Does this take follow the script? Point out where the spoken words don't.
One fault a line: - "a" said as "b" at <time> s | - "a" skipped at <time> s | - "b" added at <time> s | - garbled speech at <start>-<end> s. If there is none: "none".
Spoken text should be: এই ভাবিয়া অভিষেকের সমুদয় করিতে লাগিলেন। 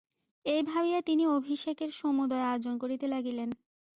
- "তিনি" added at 1.0 s
- "আয়োজন" added at 2.5 s